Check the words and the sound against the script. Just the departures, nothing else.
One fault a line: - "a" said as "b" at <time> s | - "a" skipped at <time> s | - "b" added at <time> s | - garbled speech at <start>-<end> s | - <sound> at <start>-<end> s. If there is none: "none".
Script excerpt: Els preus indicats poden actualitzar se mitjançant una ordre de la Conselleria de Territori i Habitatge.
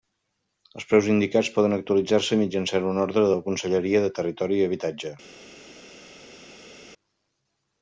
none